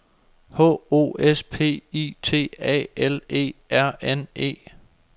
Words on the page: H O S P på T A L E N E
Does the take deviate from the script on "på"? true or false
true